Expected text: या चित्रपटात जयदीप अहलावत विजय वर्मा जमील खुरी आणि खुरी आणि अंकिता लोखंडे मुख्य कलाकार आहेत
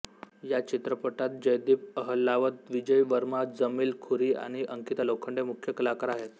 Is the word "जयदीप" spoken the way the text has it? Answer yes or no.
yes